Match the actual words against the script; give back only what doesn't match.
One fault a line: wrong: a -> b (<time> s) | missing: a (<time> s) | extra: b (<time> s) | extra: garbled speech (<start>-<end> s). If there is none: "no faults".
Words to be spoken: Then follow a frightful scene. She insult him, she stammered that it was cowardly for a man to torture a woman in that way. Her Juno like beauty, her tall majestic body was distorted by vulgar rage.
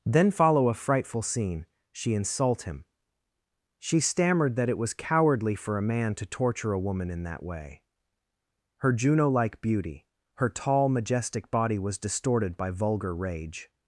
no faults